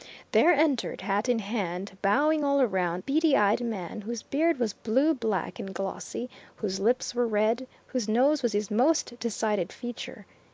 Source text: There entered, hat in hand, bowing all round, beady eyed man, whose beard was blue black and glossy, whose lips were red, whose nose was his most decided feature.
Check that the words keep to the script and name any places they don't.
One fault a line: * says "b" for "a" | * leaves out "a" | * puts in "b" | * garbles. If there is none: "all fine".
all fine